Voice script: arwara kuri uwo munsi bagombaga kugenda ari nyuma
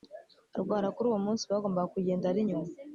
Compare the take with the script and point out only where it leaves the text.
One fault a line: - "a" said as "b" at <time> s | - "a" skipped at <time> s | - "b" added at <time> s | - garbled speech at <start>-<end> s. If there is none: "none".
none